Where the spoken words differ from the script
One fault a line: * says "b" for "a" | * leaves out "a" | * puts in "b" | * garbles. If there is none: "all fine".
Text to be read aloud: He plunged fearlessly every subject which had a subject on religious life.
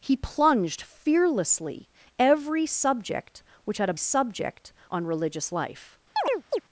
all fine